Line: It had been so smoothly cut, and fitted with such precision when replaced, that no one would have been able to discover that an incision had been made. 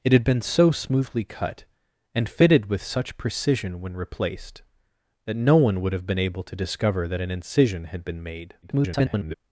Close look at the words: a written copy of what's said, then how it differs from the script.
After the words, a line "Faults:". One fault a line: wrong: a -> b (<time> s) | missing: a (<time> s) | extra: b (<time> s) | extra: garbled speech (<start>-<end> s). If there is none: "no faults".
It had been so smoothly cut, and fitted with such precision when replaced, that no one would have been able to discover that an incision had been made. [garbled]
Faults:
extra: garbled speech (8.6-9.4 s)